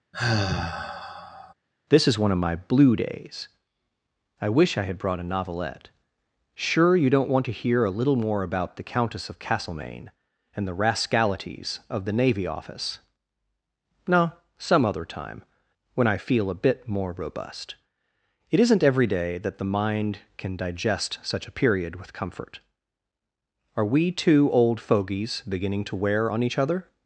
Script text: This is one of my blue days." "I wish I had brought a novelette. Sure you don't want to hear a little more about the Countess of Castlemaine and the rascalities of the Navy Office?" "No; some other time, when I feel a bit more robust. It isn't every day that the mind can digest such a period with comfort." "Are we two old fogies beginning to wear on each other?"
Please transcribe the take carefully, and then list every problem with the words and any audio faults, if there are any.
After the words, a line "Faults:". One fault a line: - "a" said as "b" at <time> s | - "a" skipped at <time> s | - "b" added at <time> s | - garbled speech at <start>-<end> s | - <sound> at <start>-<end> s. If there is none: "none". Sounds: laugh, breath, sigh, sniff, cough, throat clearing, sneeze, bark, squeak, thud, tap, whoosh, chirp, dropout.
This is one of my blue days." "I wish I had brought a novelette. Sure you don't want to hear a little more about the Countess of Castlemaine and the rascalities of the Navy Office?" "No; some other time, when I feel a bit more robust. It isn't every day that the mind can digest such a period with comfort." "Are we two old fogies beginning to wear on each other?"
Faults:
- sigh at 0.1-1.5 s